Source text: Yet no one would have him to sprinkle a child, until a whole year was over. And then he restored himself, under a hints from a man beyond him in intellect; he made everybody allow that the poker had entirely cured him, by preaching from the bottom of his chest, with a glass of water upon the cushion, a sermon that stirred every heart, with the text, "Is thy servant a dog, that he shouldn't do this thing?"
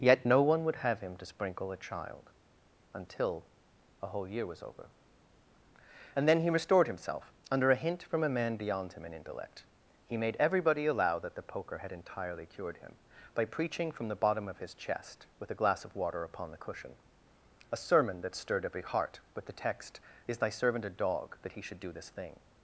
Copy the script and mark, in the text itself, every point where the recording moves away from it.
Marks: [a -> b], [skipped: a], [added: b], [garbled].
Yet no one would have him to sprinkle a child, until a whole year was over. And then he restored himself, under a [hints -> hint] from a man beyond him in intellect; he made everybody allow that the poker had entirely cured him, by preaching from the bottom of his chest, with a glass of water upon the cushion, a sermon that stirred every heart, with the text, "Is thy servant a dog, that he [shouldn't -> should] do this thing?"